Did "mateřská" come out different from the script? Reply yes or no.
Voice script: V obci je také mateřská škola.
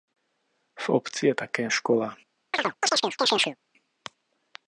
yes